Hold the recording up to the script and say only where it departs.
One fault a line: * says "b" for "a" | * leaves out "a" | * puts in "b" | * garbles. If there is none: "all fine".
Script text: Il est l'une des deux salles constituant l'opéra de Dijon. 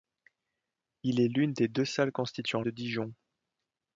* leaves out "l'opéra"